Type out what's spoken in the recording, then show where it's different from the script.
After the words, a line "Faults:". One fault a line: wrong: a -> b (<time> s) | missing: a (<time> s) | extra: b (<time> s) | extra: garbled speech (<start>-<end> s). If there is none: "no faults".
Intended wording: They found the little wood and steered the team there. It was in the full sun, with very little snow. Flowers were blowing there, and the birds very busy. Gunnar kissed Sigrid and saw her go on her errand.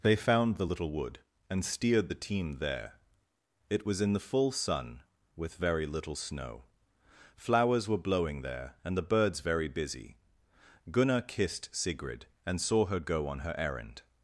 They found the little wood and steered the team there. It was in the full sun, with very little snow. Flowers were blowing there, and the birds very busy. Gunnar kissed Sigrid and saw her go on her errand.
Faults:
no faults